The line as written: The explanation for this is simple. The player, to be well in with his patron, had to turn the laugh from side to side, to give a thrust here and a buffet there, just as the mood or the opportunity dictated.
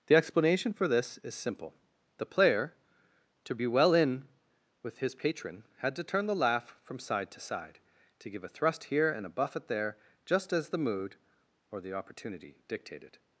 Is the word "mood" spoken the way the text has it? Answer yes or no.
yes